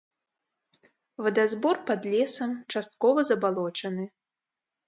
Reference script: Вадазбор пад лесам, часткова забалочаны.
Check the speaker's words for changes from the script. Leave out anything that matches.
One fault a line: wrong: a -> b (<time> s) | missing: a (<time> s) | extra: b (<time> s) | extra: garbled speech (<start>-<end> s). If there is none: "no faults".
no faults